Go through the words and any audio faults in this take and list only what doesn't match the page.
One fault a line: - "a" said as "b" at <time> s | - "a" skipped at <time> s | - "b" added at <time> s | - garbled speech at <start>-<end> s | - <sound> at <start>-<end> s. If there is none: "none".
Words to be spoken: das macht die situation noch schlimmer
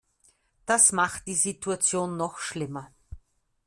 none